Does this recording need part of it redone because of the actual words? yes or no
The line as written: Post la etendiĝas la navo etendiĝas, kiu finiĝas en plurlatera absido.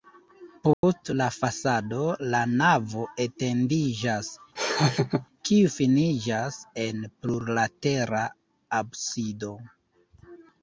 yes